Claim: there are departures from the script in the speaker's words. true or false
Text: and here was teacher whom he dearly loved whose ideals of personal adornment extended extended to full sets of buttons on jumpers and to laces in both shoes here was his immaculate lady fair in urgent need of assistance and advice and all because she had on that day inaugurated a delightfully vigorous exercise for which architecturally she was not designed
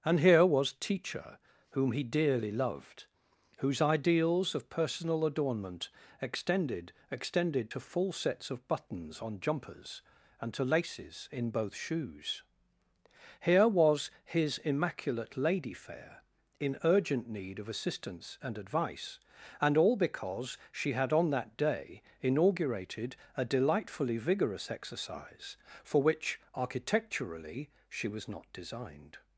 false